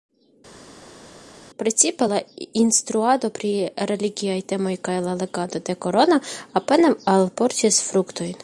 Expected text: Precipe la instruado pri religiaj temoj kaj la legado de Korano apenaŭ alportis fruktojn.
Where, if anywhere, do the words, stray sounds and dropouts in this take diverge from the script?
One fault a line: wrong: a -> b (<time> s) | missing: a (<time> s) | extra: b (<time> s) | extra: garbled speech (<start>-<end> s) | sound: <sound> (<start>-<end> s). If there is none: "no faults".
no faults